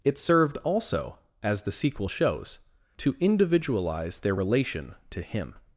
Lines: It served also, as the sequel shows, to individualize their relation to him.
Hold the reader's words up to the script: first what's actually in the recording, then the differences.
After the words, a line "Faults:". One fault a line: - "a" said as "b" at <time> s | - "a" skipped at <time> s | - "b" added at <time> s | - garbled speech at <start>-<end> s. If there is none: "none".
It served also, as the sequel shows, to individualize their relation to him.
Faults:
none